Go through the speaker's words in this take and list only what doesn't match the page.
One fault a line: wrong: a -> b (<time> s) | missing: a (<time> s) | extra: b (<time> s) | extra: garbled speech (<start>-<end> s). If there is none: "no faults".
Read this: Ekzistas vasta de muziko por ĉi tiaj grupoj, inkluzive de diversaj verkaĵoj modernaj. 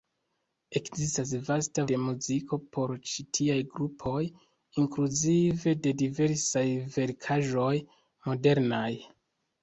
no faults